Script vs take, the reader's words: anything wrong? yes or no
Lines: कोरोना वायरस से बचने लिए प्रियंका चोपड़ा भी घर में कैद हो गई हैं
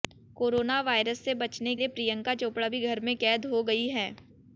no